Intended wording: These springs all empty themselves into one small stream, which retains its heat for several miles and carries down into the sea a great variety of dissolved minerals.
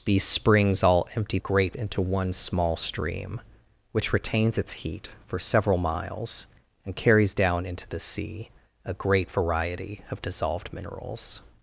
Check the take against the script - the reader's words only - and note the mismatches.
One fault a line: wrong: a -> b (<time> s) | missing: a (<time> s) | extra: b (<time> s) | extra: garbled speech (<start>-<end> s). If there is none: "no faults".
wrong: themselves -> great (1.4 s)